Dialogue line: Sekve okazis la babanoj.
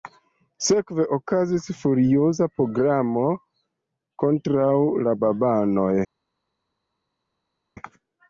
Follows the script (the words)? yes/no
no